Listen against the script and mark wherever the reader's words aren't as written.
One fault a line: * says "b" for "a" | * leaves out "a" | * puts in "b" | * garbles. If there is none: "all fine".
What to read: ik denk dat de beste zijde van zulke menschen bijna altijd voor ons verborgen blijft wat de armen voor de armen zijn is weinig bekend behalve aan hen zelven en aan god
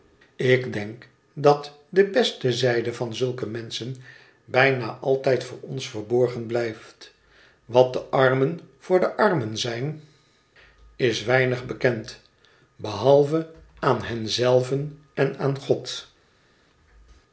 all fine